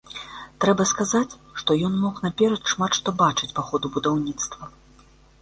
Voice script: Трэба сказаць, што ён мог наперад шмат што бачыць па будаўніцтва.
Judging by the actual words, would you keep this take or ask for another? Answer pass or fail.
fail